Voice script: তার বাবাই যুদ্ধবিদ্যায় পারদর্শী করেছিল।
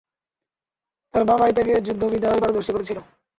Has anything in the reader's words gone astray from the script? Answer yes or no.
yes